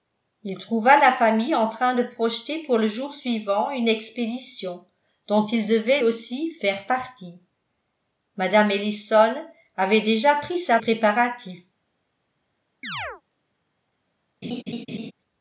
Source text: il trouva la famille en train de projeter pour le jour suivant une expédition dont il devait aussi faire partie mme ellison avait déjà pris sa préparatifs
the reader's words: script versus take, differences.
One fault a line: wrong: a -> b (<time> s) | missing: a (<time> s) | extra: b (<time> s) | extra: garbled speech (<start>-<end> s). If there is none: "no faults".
no faults